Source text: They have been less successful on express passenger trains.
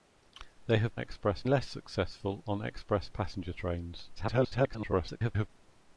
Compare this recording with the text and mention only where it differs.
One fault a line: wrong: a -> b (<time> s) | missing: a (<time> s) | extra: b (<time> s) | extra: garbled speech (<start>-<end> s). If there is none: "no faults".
wrong: been -> express (1.0 s)
extra: garbled speech (4.1-5.5 s)